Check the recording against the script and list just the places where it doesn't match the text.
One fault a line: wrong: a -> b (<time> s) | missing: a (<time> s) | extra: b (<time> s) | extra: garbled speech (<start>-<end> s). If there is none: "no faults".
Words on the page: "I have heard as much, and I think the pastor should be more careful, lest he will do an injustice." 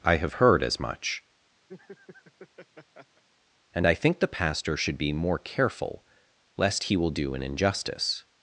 no faults